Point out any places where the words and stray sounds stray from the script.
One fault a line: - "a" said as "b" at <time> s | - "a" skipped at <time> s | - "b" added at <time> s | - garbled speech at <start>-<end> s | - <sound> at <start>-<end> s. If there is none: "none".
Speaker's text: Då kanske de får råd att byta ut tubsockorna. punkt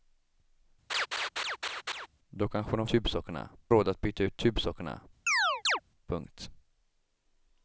- laugh at 0.9-2.1 s
- "får" said as "tubsockorna" at 2.8 s
- chirp at 5.3-5.8 s